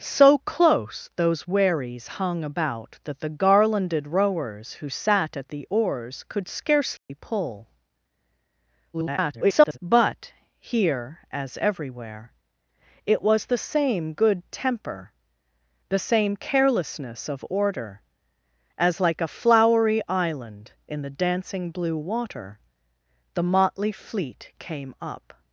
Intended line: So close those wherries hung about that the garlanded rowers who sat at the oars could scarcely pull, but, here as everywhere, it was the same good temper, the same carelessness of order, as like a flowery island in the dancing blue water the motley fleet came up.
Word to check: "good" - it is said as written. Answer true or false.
true